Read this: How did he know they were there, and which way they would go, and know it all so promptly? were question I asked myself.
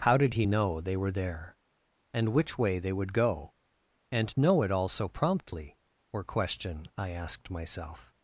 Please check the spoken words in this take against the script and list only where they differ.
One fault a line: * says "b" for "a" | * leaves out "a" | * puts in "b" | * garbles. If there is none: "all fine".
all fine